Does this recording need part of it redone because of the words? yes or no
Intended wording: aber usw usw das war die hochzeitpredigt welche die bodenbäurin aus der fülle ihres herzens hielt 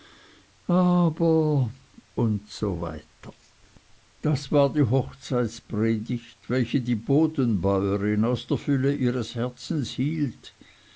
yes